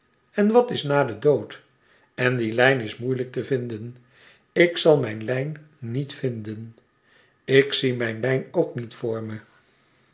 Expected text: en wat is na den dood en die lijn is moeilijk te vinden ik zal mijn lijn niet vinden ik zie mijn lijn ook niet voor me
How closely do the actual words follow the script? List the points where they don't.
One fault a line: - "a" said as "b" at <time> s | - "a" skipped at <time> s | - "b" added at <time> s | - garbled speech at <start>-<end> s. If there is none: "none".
none